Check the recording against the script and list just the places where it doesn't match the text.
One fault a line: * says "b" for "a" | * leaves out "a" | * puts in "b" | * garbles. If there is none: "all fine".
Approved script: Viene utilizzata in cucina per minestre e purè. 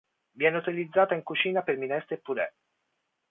all fine